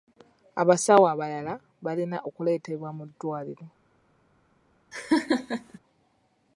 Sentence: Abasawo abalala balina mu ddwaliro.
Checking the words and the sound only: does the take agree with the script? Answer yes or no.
no